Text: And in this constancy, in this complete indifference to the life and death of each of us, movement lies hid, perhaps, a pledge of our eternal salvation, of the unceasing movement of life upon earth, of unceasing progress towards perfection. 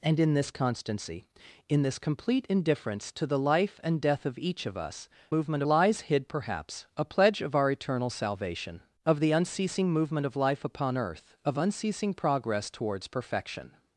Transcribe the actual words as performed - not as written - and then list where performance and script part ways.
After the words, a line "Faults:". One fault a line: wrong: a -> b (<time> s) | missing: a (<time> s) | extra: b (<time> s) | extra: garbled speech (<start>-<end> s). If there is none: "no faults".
And in this constancy, in this complete indifference to the life and death of each of us, movement lies hid, perhaps, a pledge of our eternal salvation, of the unceasing movement of life upon earth, of unceasing progress towards perfection.
Faults:
no faults